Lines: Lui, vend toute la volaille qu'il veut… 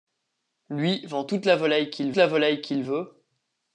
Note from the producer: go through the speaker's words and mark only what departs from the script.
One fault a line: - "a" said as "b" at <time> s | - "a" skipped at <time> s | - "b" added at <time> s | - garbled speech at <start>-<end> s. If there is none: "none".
- "la volaille qu'il" added at 2.2 s